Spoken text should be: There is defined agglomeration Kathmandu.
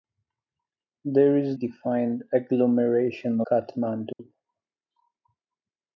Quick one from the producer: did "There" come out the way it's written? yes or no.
yes